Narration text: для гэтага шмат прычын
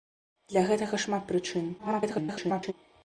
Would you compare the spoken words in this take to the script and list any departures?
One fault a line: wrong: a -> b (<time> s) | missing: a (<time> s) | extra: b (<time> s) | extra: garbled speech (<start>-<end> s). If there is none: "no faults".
extra: garbled speech (1.8-2.7 s)